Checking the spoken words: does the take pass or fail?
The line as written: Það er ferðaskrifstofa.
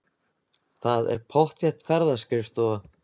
fail